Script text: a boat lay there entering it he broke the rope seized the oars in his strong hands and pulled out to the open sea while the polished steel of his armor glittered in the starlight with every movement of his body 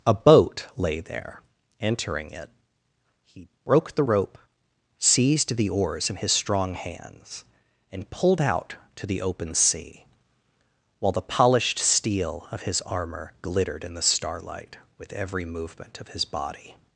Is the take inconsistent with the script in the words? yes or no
no